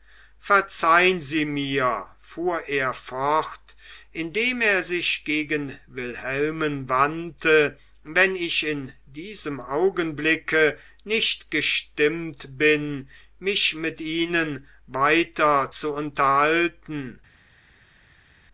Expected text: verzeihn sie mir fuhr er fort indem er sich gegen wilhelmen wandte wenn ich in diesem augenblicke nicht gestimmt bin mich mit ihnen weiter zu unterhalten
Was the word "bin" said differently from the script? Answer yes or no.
no